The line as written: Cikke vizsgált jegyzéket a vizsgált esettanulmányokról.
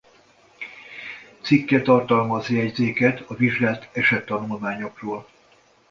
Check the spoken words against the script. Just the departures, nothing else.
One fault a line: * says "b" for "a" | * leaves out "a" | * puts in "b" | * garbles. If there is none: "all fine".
* says "tartalmaz" for "vizsgált"